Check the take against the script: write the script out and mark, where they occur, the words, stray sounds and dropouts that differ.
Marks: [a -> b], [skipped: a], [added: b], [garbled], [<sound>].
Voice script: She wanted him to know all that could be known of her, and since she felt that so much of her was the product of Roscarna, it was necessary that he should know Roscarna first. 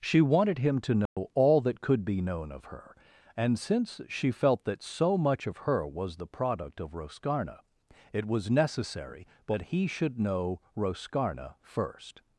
She wanted him to know [dropout] all that could be known of her, and since she felt that so much of her was the product of Roscarna, it was necessary that he should know Roscarna first.